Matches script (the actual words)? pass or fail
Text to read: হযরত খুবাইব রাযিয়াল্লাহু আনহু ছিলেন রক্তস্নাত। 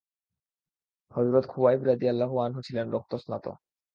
pass